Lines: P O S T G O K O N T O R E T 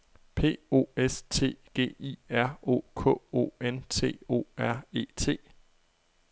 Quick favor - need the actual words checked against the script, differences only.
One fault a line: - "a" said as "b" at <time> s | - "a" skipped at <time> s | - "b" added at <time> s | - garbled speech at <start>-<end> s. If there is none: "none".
- "I R" added at 2.0 s